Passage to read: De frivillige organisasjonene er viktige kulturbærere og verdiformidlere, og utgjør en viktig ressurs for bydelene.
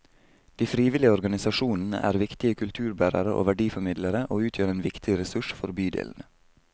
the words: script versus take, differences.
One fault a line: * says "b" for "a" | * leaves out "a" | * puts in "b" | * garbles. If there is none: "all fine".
all fine